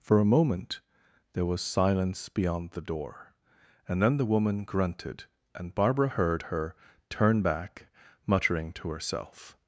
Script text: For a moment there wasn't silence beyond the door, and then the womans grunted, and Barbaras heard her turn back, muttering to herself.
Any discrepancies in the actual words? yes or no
yes